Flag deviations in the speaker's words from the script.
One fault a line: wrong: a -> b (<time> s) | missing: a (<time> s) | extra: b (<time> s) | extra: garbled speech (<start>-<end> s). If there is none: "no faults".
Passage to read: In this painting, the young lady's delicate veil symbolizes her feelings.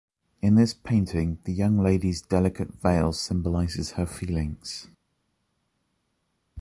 no faults